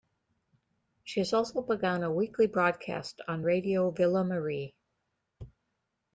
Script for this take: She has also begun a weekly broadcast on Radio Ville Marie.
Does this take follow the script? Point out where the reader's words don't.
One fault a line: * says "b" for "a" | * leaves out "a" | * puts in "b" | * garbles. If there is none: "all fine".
all fine